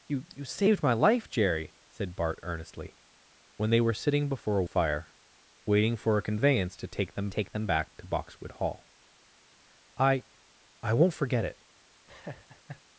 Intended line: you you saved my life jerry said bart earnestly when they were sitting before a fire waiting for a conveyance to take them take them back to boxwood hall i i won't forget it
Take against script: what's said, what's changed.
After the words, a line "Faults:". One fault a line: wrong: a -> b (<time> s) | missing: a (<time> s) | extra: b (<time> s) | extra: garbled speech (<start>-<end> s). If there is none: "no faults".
you you saved my life jerry said bart earnestly when they were sitting before a fire waiting for a conveyance to take them take them back to boxwood hall i i won't forget it
Faults:
no faults